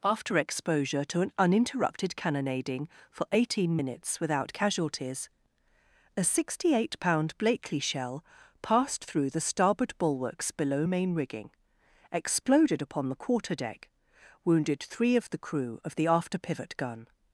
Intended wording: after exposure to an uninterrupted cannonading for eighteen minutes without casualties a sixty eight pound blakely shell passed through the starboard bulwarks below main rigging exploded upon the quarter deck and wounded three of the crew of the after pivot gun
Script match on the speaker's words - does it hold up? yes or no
no